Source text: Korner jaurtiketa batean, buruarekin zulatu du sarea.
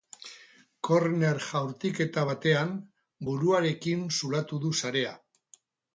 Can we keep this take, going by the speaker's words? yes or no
yes